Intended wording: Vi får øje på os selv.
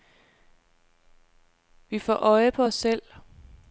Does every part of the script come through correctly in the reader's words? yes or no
yes